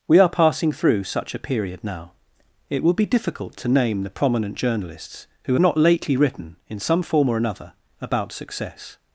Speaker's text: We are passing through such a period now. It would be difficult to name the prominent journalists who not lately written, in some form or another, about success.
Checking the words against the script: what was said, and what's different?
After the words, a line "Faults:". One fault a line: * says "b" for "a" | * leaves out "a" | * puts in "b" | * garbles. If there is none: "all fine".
We are passing through such a period now. It would be difficult to name the prominent journalists who not lately written, in some form or another, about success.
Faults:
all fine